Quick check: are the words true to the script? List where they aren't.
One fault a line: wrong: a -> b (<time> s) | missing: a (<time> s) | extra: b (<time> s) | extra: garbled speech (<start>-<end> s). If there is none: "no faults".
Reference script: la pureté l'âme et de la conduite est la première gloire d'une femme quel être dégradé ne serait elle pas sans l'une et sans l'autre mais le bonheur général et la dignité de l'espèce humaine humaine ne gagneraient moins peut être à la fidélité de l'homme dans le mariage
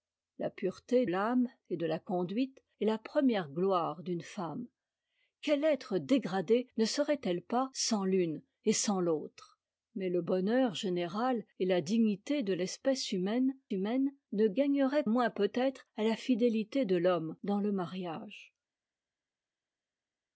no faults